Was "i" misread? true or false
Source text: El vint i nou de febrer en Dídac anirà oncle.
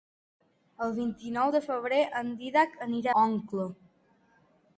false